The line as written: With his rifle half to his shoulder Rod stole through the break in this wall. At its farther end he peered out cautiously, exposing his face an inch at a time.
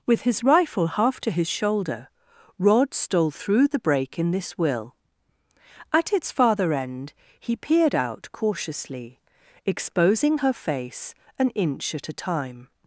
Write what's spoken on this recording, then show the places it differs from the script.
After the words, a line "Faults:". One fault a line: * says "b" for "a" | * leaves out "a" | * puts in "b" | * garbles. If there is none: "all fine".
With his rifle half to his shoulder Rod stole through the break in this will. At its farther end he peered out cautiously, exposing her face an inch at a time.
Faults:
* says "will" for "wall"
* says "her" for "his"